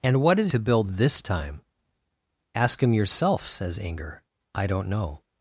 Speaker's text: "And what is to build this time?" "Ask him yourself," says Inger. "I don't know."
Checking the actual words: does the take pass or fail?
pass